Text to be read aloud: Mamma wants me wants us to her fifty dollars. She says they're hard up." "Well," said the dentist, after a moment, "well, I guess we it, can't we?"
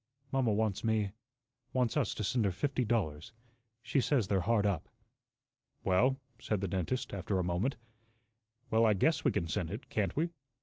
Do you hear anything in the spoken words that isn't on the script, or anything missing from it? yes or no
yes